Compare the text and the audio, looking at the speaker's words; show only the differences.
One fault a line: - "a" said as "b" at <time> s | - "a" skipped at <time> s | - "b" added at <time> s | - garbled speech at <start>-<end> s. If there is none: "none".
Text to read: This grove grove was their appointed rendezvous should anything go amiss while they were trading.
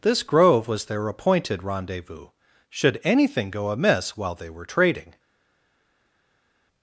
- "grove" skipped at 0.7 s